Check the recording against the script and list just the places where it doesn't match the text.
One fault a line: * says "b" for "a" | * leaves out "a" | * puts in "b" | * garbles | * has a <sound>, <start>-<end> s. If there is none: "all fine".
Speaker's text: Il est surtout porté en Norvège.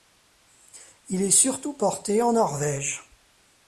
all fine